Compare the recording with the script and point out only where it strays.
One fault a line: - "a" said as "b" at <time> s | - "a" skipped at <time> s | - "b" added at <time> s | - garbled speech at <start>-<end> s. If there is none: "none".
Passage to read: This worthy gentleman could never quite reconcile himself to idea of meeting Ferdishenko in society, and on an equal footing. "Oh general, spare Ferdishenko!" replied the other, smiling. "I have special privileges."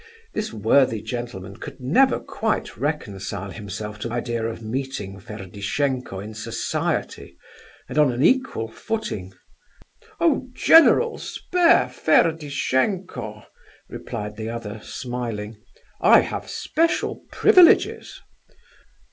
none